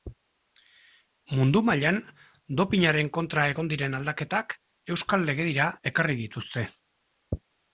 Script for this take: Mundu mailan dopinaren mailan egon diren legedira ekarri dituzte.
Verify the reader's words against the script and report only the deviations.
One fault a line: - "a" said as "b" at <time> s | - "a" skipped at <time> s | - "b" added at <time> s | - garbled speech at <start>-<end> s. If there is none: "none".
- "mailan" said as "kontra" at 3.2 s
- "aldaketak euskal" added at 4.0 s